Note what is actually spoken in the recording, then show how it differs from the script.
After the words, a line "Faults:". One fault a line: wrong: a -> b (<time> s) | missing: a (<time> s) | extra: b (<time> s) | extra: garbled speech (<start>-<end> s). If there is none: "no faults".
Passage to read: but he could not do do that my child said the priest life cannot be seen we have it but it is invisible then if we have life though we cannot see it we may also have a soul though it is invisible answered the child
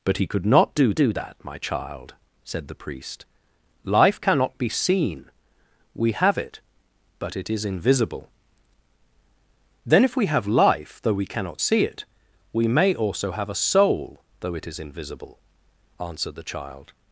but he could not do do that my child said the priest life cannot be seen we have it but it is invisible then if we have life though we cannot see it we may also have a soul though it is invisible answered the child
Faults:
no faults